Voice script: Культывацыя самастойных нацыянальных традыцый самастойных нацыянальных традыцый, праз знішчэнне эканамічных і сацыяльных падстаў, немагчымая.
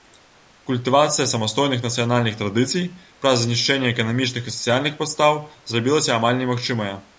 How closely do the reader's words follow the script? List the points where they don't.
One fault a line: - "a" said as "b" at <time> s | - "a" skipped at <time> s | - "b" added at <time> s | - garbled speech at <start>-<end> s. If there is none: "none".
- "самастойных нацыянальных традыцый" skipped at 3.0 s
- "зрабілася амаль" added at 5.7 s